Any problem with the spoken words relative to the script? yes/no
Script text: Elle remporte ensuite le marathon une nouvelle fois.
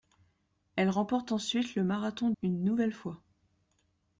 no